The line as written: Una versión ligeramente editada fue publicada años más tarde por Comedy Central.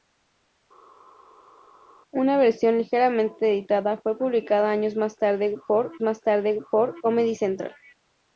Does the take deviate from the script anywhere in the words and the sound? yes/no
yes